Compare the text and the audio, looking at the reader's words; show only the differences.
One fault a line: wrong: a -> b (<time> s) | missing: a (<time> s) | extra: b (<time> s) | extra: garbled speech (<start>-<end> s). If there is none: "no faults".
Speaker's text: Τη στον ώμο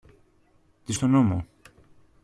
no faults